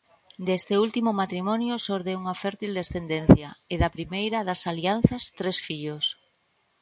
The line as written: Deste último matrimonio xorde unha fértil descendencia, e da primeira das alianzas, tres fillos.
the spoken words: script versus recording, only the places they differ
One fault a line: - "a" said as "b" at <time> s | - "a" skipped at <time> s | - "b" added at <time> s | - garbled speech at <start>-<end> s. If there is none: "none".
none